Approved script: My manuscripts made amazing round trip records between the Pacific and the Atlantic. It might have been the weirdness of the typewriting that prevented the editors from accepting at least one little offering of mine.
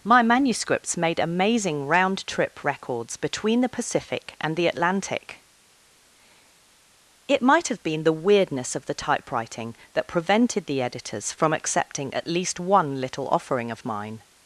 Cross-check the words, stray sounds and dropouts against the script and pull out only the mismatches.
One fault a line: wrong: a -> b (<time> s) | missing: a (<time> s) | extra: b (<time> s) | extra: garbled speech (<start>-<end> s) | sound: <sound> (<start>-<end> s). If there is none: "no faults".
no faults